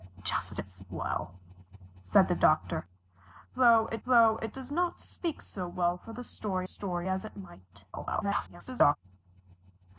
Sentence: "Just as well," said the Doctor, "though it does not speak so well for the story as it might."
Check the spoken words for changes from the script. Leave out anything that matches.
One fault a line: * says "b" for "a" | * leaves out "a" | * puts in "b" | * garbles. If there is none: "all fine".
* puts in "though it"
* puts in "story"
* garbles